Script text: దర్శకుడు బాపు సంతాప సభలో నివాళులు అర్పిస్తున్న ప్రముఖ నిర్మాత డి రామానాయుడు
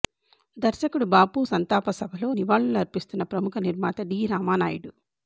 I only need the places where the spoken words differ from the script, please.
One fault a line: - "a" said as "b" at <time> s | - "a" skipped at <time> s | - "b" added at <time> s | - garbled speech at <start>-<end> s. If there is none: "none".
none